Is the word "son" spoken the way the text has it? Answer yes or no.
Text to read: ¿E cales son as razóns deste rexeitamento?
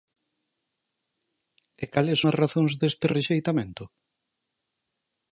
no